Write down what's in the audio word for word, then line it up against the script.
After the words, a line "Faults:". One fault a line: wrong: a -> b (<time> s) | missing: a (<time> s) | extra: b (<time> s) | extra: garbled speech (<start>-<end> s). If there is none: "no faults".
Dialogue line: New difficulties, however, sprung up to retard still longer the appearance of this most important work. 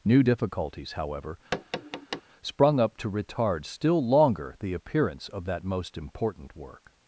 New difficulties, however, sprung up to retard still longer the appearance of that most important work.
Faults:
wrong: this -> that (5.4 s)